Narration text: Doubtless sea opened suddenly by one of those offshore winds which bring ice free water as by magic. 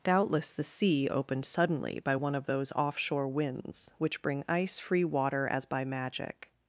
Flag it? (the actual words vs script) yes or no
yes